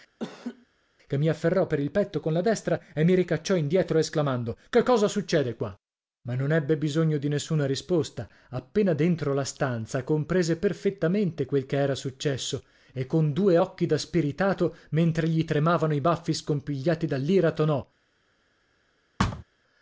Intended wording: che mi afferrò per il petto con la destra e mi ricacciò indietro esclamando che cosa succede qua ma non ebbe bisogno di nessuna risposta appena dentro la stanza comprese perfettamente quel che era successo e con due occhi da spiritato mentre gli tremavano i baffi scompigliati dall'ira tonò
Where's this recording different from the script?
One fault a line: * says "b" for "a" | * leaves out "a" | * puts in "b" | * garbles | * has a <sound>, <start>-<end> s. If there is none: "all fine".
* has a laugh, 0.2-0.7 s
* has a thud, 19.2-19.4 s